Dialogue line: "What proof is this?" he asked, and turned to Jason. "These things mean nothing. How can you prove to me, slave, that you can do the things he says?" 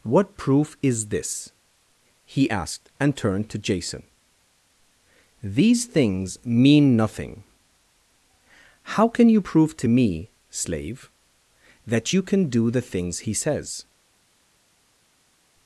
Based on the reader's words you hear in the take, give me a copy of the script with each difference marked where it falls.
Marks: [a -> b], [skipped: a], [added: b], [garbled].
"What proof is this?" he asked, and turned to Jason. "These things mean nothing. How can you prove to me, slave, that you can do the things he says?"